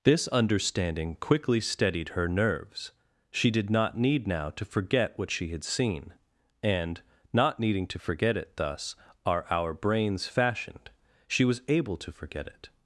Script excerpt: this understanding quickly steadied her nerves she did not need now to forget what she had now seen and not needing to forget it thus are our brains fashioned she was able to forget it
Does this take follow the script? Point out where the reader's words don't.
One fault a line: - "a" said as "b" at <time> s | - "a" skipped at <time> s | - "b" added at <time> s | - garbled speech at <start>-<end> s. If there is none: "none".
- "now" skipped at 5.6 s